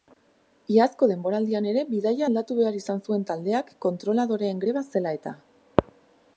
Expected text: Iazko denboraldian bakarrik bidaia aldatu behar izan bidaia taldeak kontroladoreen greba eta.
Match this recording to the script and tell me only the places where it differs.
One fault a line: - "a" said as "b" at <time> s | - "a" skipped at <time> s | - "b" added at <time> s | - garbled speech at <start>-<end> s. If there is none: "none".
- "bakarrik" said as "ere" at 1.7 s
- "bidaia" said as "zuen" at 3.1 s
- "zela" added at 5.0 s